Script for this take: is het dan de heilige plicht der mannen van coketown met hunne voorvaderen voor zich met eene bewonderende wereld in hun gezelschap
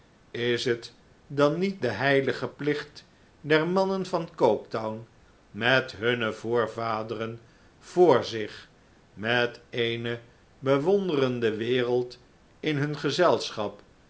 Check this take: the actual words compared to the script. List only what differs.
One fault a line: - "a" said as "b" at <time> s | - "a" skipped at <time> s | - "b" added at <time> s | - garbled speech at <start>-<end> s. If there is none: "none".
- "niet" added at 1.6 s